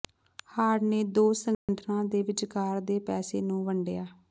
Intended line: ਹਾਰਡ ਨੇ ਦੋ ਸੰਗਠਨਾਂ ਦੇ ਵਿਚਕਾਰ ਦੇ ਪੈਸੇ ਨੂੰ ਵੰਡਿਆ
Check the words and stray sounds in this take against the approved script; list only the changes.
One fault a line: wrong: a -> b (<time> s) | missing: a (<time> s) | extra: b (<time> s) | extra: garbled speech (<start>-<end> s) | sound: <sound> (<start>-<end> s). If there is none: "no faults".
sound: dropout (1.5-1.7 s)